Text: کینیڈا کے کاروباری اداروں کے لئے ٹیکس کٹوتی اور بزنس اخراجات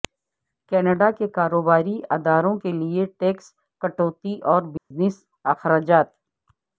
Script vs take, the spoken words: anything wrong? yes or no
no